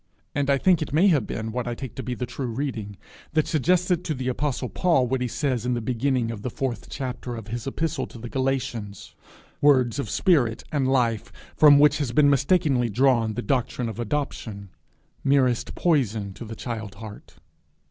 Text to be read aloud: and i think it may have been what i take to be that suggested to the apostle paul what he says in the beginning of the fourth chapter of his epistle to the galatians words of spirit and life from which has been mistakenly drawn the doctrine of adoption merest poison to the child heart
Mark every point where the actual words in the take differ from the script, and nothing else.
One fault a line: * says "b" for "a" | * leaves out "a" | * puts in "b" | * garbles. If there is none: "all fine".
* puts in "the true reading"